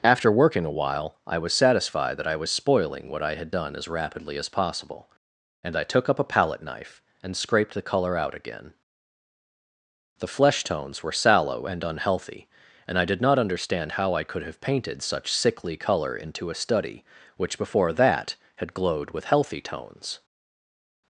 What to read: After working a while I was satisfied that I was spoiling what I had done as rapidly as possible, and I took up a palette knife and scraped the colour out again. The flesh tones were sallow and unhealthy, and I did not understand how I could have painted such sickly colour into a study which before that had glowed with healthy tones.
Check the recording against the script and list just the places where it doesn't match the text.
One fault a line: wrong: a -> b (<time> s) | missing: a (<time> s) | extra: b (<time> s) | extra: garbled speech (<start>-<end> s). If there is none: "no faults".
no faults